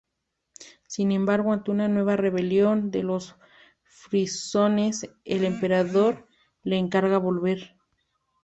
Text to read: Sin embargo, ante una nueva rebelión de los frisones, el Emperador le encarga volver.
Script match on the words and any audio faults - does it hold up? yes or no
yes